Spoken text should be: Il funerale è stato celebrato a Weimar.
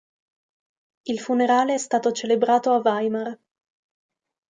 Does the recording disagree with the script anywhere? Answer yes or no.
no